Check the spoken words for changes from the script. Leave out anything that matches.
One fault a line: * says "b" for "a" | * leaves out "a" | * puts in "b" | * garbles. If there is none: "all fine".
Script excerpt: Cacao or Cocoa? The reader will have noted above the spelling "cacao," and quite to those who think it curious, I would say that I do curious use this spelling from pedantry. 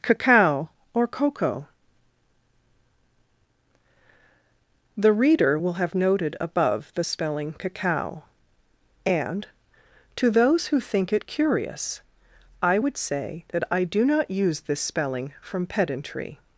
* leaves out "quite"
* says "not" for "curious"